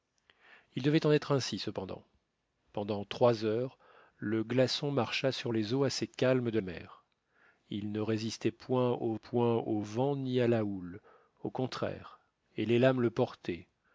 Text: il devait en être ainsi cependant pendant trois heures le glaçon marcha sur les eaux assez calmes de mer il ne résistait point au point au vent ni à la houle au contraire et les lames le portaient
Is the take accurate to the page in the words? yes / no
yes